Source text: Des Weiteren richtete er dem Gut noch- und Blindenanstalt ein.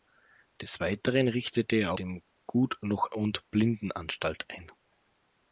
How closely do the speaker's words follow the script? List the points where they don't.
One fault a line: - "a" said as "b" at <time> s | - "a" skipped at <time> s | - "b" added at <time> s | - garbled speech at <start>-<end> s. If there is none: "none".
none